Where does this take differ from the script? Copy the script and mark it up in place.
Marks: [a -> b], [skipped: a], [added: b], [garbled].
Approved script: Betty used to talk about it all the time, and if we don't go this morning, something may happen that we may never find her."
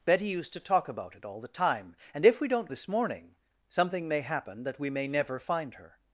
Betty used to talk about it all the time, and if we don't [skipped: go] this morning, something may happen that we may never find her."